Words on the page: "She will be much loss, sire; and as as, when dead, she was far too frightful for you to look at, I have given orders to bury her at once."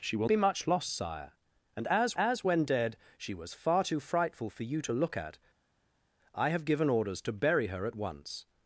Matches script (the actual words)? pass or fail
pass